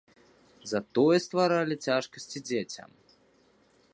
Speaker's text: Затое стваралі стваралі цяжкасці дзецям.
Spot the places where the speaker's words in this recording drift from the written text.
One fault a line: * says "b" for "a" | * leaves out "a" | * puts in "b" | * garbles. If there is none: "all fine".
* leaves out "стваралі"